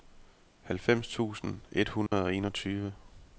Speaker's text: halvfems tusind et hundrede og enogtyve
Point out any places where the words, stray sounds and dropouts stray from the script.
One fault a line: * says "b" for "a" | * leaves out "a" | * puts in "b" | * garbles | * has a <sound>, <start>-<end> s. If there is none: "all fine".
* has a dropout, 2.1-2.1 s